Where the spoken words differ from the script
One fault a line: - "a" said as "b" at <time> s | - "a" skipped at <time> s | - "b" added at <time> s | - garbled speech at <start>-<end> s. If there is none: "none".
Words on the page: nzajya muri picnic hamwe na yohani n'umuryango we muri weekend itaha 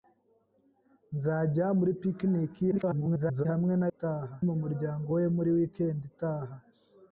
- garbled speech at 2.7-3.5 s
- "yohani" said as "itaha" at 3.9 s